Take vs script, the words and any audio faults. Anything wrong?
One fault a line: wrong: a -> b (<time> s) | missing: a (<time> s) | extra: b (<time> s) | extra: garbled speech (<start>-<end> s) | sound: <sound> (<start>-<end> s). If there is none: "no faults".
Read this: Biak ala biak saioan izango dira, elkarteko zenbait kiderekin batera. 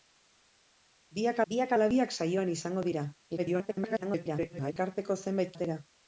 extra: biak (1.5 s)
extra: garbled speech (3.4-4.7 s)
missing: kiderekin (5.6 s)